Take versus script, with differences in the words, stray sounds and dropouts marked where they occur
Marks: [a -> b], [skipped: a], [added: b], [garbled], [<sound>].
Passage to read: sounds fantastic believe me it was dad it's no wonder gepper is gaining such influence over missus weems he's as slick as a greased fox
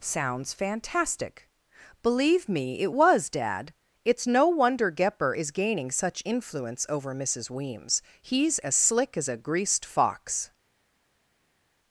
sounds fantastic believe me it was dad it's no wonder gepper is gaining such influence over missus weems he's as slick as a greased fox